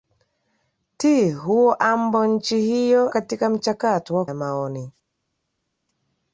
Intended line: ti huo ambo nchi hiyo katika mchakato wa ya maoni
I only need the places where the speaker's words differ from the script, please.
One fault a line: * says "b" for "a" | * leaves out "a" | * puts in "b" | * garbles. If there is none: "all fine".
all fine